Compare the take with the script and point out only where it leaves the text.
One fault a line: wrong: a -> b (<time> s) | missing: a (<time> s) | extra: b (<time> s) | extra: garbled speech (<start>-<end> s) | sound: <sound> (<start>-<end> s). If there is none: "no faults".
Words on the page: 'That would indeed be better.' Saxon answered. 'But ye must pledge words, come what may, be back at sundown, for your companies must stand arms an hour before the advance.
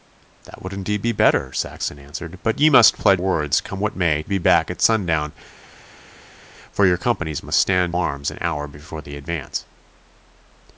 no faults